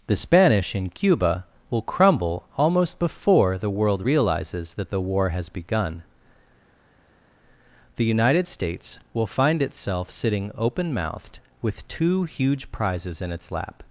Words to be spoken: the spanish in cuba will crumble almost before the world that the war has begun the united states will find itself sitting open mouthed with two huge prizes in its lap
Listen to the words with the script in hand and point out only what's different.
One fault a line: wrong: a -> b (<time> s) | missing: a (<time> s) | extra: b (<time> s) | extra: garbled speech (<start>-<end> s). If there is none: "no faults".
extra: realizes (4.0 s)